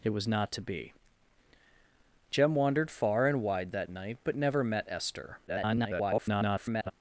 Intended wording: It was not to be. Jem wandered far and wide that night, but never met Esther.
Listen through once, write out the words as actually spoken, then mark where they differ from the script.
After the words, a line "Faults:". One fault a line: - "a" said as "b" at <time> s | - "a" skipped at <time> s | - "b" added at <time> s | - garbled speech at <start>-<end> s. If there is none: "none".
It was not to be. Jem wandered far and wide that night, but never met Esther. [garbled]
Faults:
- garbled speech at 5.5-6.9 s